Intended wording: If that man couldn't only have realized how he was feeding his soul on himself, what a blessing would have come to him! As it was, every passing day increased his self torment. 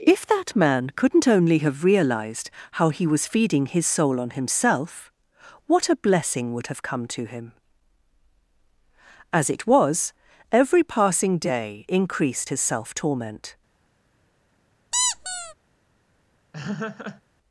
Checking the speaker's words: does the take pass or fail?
pass